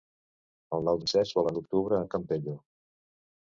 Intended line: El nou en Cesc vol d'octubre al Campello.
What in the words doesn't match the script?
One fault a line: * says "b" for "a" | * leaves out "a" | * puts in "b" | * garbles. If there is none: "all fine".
all fine